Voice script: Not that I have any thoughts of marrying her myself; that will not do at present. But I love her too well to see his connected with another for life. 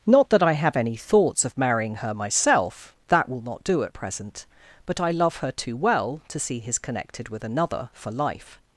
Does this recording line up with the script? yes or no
yes